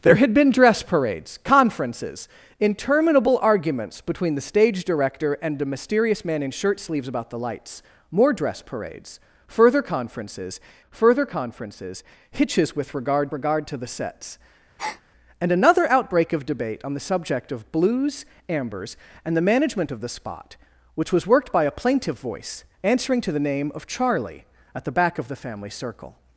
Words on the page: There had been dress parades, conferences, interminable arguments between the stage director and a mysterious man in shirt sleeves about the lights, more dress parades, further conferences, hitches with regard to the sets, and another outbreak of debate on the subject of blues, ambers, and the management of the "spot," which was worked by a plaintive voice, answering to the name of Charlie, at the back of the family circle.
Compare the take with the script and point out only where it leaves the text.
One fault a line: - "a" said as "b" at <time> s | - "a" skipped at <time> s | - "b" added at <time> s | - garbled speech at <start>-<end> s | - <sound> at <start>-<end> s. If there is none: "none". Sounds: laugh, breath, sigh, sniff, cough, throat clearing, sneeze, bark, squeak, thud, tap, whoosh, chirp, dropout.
- "further conferences" added at 10.9 s
- "regard" added at 13.3 s
- breath at 14.8-15.0 s